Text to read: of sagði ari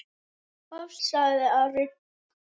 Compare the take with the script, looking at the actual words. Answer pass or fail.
pass